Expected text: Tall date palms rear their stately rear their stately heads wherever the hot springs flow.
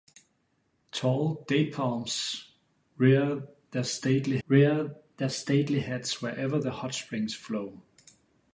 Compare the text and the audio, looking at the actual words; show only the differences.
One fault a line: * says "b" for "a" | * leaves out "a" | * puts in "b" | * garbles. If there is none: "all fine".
all fine